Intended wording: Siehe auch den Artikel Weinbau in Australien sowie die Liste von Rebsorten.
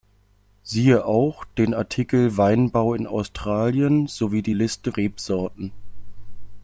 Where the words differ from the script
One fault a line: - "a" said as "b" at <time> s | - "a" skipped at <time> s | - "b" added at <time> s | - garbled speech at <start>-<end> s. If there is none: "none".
- "von" skipped at 4.9 s